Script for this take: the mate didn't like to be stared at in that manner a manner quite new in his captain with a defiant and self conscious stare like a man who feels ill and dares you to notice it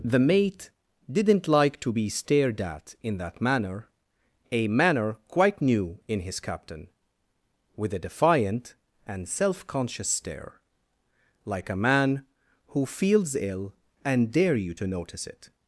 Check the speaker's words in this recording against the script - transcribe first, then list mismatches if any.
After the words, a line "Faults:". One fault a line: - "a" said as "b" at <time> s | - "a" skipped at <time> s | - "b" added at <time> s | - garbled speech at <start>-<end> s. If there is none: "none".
the mate didn't like to be stared at in that manner a manner quite new in his captain with a defiant and self conscious stare like a man who feels ill and dare you to notice it
Faults:
- "dares" said as "dare" at 14.3 s